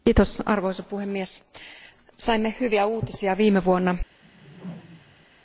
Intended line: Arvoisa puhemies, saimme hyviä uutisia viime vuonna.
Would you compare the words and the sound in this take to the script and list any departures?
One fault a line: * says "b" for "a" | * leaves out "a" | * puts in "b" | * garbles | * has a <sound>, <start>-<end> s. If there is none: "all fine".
* has a whoosh, 4.2-5.3 s